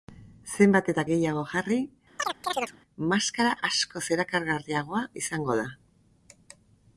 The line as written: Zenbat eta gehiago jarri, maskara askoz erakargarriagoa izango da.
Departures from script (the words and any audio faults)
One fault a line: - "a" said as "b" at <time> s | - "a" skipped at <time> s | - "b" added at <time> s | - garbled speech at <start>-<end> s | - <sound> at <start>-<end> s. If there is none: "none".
- chirp at 2.2-2.8 s